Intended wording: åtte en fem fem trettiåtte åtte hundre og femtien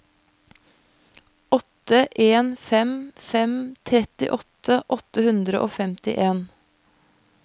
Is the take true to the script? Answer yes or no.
yes